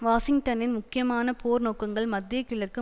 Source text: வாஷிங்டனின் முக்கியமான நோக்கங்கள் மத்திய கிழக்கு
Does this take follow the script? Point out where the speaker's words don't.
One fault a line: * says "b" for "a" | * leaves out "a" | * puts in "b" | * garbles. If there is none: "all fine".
* puts in "போர்"